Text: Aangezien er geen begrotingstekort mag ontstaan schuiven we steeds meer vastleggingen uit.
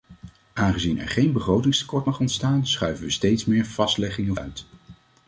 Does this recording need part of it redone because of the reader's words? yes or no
no